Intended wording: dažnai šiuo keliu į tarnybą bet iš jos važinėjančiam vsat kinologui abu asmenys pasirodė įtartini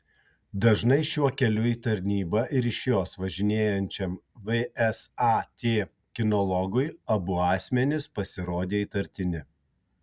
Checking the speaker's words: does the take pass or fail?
fail